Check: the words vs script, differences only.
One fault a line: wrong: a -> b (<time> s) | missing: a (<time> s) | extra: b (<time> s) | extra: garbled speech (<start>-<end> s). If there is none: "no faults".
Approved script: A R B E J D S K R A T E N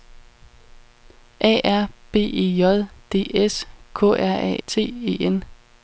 no faults